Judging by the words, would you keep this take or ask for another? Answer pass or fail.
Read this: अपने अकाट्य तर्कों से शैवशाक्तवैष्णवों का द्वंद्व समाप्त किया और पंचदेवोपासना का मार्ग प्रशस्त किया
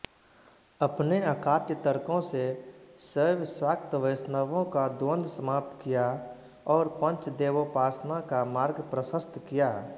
pass